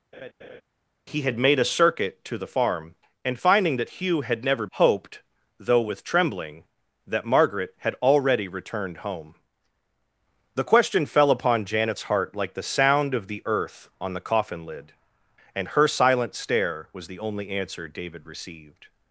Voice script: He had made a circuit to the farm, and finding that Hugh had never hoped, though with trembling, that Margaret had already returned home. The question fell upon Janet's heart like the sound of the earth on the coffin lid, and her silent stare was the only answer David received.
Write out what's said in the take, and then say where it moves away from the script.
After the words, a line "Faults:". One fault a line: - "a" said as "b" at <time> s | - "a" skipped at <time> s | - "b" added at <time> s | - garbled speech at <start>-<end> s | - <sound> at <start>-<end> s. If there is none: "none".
He had made a circuit to the farm, and finding that Hugh had never hoped, though with trembling, that Margaret had already returned home. The question fell upon Janet's heart like the sound of the earth on the coffin lid, and her silent stare was the only answer David received.
Faults:
- laugh at 0.1-0.6 s